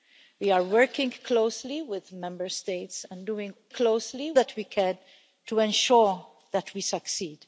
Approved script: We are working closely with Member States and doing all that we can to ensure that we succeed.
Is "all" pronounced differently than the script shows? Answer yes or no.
yes